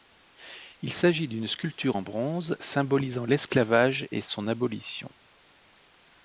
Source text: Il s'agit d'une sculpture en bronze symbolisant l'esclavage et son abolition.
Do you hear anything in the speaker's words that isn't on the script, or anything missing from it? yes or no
no